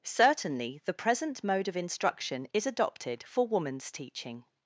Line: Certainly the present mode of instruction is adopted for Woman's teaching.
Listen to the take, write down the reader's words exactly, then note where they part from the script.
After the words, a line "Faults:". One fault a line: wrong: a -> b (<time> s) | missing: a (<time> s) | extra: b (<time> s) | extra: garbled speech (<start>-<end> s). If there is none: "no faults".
Certainly the present mode of instruction is adopted for Woman's teaching.
Faults:
no faults